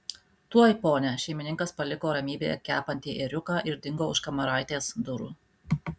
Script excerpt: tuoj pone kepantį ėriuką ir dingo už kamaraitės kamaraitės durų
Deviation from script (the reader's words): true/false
true